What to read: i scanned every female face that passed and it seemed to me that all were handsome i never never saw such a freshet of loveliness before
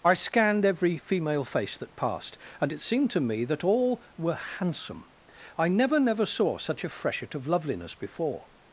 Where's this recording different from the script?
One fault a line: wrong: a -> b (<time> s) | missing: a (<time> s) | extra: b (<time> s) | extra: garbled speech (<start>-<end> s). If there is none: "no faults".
no faults